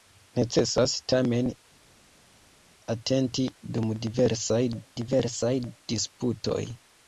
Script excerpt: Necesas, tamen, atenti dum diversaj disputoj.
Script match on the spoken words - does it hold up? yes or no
no